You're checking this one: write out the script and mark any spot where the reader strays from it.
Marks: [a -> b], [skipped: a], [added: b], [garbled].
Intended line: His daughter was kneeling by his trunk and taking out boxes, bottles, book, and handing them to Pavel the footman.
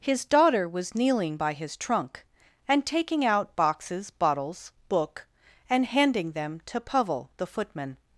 His daughter was kneeling by his trunk and taking out boxes, bottles, book, and handing them to Pavel the footman.